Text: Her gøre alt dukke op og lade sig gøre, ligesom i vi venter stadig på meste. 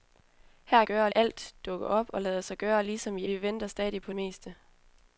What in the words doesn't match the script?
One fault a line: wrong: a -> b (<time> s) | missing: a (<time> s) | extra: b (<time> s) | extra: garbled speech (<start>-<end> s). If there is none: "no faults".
no faults